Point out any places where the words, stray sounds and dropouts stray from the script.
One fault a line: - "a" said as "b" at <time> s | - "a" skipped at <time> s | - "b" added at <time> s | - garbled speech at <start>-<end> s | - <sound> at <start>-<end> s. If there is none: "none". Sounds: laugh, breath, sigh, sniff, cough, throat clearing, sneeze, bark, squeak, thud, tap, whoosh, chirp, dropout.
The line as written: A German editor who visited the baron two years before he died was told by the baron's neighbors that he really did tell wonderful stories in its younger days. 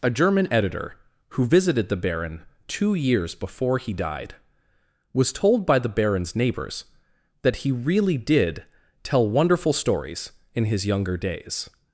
- "its" said as "his" at 10.6 s